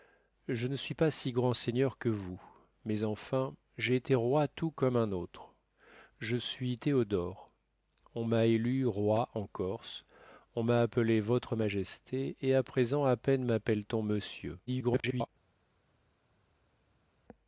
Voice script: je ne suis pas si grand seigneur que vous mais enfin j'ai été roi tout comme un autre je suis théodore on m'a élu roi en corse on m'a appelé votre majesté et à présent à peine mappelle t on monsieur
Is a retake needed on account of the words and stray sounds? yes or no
yes